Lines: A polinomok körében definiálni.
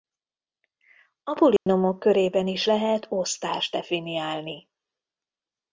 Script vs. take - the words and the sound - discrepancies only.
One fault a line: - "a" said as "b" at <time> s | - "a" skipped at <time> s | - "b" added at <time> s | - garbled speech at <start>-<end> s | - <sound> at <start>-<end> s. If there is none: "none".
- dropout at 1.6-1.7 s
- "is lehet osztást" added at 2.5 s